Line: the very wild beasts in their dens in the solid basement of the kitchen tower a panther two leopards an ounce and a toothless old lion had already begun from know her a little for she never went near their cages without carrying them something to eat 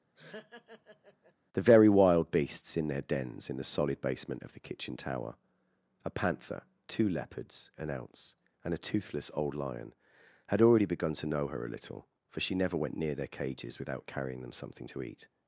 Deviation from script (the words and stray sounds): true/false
true